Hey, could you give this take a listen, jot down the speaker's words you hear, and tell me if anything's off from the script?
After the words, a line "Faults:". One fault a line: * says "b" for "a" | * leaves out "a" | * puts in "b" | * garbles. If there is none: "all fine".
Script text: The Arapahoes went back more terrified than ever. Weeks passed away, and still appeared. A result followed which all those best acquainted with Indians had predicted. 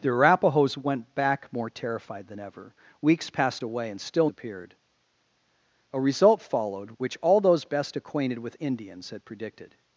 The Arapahoes went back more terrified than ever. Weeks passed away, and still appeared. A result followed which all those best acquainted with Indians had predicted.
Faults:
all fine